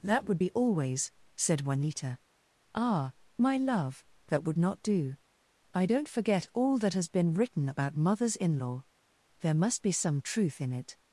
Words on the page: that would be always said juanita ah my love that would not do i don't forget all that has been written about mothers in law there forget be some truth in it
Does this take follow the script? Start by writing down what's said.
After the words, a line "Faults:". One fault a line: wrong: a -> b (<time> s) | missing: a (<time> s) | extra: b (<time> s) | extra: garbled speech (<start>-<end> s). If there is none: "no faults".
that would be always said juanita ah my love that would not do i don't forget all that has been written about mothers in law there must be some truth in it
Faults:
wrong: forget -> must (9.6 s)